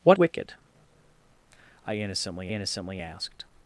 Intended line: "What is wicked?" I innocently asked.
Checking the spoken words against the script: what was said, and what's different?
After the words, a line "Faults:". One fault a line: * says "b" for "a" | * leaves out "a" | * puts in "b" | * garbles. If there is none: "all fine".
"What wicked?" I innocently innocently asked.
Faults:
* leaves out "is"
* puts in "innocently"